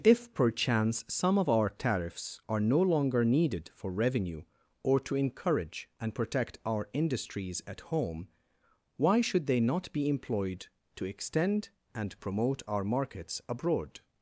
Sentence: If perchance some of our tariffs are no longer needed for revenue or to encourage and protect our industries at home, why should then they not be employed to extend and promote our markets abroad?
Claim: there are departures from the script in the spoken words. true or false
true